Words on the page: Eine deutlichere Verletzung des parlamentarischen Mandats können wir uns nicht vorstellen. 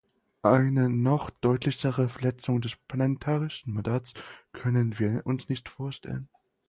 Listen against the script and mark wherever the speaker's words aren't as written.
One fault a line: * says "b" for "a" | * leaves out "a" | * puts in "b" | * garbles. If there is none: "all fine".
* puts in "noch"